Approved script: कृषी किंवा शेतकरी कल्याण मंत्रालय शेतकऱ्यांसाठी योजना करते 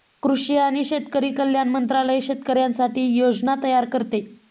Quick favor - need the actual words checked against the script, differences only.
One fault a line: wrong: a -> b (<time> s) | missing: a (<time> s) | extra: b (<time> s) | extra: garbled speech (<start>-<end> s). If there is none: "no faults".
wrong: किंवा -> आणि (0.6 s)
extra: तयार (3.6 s)